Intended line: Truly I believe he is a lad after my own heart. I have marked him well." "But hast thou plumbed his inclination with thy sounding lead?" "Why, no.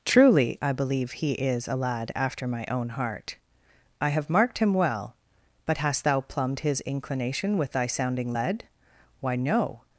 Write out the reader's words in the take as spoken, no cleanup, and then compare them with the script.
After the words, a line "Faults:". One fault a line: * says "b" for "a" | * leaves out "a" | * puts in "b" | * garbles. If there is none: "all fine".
Truly I believe he is a lad after my own heart. I have marked him well." "But hast thou plumbed his inclination with thy sounding lead?" "Why, no.
Faults:
all fine